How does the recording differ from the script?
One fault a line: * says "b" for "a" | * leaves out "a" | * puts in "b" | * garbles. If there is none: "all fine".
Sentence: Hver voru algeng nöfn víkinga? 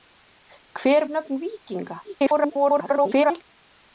* leaves out "voru algeng"
* garbles